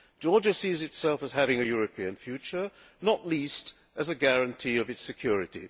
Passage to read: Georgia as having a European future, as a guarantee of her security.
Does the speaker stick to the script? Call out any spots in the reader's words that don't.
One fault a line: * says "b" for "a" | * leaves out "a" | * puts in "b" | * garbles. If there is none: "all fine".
* puts in "sees itself"
* puts in "not least"
* says "its" for "her"